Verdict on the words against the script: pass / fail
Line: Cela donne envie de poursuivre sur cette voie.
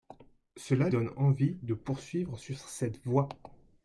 pass